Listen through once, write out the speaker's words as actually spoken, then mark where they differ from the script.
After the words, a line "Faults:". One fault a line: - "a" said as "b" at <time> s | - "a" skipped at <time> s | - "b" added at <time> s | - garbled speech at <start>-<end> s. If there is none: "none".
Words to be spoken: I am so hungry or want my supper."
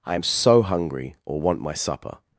I am so hungry or want my supper."
Faults:
none